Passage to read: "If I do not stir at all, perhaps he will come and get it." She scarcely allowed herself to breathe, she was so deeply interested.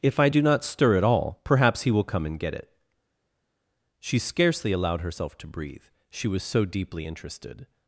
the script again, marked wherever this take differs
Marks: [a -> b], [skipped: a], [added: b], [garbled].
"If I do not stir at all, perhaps he will come and get it." She scarcely allowed herself to breathe, she was so deeply interested.